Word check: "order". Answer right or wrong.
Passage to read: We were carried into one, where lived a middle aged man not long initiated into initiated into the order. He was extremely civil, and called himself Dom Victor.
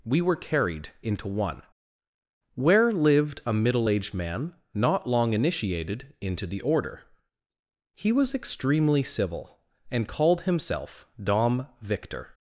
right